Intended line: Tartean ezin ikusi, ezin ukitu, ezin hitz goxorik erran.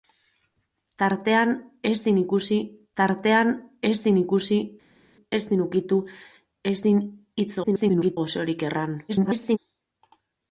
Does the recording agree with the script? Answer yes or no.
no